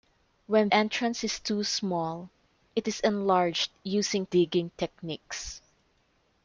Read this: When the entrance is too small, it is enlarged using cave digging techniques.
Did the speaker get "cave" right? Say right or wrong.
wrong